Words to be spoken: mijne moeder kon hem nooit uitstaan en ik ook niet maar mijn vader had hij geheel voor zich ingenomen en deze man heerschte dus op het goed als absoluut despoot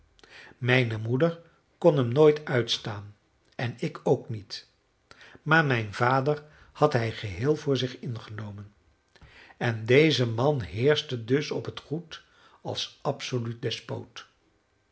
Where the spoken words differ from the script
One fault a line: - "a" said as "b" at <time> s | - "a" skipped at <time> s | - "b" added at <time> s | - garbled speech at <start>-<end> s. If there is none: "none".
none